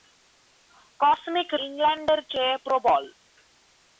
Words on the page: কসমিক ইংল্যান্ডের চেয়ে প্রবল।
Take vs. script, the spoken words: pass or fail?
pass